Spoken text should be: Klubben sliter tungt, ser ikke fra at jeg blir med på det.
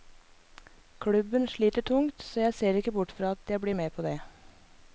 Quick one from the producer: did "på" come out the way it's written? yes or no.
yes